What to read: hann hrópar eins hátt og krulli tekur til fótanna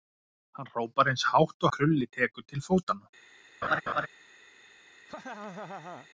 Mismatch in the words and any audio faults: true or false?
true